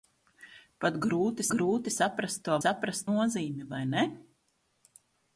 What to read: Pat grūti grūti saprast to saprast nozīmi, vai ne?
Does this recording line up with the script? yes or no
yes